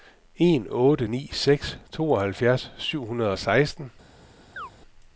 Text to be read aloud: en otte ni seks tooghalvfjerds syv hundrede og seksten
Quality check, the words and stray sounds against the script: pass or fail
fail